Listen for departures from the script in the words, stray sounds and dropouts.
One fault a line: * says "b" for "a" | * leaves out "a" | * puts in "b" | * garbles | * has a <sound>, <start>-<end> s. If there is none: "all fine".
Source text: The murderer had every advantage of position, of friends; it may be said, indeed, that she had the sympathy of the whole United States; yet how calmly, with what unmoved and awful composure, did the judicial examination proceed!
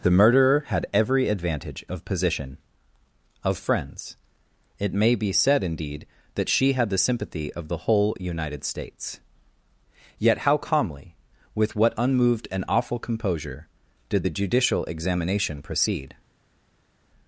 all fine